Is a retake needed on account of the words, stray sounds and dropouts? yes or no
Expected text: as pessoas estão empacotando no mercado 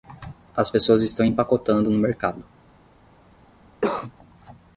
yes